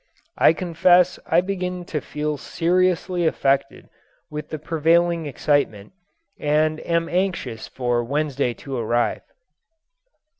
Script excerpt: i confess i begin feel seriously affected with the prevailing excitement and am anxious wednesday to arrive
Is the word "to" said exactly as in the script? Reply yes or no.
yes